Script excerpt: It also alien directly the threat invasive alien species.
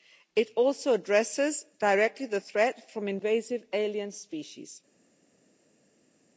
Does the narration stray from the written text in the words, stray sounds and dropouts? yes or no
yes